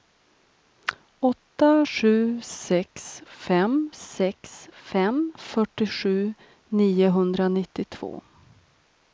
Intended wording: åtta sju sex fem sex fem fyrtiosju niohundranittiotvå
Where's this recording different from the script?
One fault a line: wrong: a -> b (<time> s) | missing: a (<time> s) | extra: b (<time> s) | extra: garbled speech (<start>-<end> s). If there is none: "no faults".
no faults